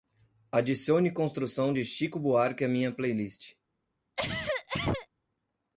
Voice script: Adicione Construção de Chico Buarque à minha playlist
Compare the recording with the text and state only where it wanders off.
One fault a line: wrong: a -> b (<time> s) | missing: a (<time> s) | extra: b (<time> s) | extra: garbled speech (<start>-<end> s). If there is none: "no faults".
no faults